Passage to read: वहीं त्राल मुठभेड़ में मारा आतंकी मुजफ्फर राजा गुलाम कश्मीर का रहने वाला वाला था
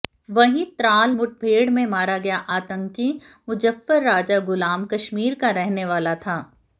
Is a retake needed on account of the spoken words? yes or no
yes